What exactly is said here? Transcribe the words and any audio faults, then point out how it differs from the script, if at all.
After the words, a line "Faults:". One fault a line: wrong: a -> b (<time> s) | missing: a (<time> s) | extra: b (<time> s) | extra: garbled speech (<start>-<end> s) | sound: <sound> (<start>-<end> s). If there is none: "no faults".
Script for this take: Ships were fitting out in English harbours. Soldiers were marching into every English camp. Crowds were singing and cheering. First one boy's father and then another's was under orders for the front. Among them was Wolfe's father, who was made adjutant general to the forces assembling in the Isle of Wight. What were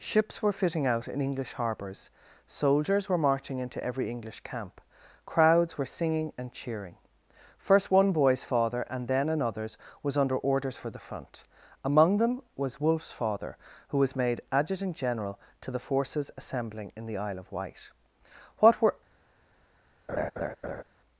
Ships were fitting out in English harbours. Soldiers were marching into every English camp. Crowds were singing and cheering. First one boy's father and then another's was under orders for the front. Among them was Wolfe's father, who was made adjutant general to the forces assembling in the Isle of Wight. What were
Faults:
sound: laugh (20.1-20.8 s)